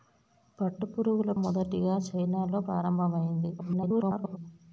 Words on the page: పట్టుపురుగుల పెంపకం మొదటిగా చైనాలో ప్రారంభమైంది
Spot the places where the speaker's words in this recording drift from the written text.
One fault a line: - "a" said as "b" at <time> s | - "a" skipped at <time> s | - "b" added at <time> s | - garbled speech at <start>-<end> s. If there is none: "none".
- "పెంపకం" skipped at 1.3 s
- garbled speech at 3.6-4.4 s